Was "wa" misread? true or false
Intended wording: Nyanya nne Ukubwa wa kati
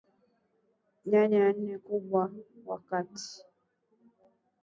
false